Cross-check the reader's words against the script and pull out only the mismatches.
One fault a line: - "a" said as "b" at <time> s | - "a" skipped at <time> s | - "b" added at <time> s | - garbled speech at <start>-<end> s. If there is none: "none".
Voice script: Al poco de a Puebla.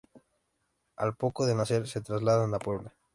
- "nacer se trasladan" added at 1.5 s